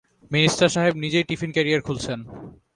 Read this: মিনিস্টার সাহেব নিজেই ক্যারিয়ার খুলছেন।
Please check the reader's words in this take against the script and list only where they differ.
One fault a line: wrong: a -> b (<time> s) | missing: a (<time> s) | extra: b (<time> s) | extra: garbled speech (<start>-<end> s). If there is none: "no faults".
extra: টিফিন (1.3 s)